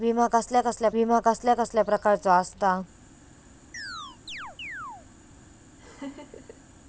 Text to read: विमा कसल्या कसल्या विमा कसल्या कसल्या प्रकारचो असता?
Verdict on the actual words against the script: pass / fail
pass